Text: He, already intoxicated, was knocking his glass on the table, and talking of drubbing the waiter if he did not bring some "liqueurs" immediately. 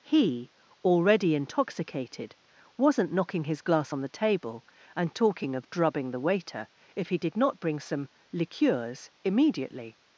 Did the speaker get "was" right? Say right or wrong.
wrong